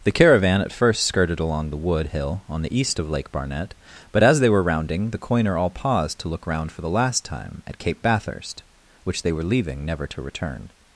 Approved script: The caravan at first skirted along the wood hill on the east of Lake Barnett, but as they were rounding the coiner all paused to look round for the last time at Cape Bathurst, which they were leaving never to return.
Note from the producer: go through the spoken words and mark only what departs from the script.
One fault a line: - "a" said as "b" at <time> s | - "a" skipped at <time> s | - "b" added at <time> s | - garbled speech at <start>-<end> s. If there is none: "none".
none